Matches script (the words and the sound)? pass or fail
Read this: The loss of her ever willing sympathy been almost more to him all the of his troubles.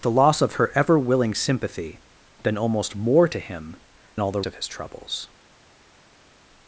pass